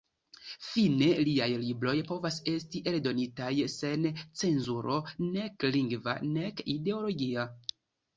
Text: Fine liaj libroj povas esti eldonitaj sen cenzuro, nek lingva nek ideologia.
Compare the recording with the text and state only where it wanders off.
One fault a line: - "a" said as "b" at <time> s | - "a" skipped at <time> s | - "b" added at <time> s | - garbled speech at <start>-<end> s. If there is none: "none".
none